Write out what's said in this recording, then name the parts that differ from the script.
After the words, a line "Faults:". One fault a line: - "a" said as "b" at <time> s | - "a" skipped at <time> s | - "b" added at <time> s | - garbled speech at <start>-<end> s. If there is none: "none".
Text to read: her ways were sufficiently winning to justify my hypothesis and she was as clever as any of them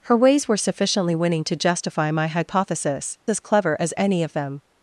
her ways were sufficiently winning to justify my hypothesis as clever as any of them
Faults:
- "and she was" skipped at 3.2 s